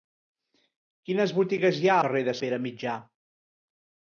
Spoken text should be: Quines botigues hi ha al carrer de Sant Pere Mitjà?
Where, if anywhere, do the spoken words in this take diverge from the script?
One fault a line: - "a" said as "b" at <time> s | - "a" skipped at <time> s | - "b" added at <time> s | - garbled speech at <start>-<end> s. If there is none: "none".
- "al" skipped at 2.0 s
- "Sant" skipped at 2.4 s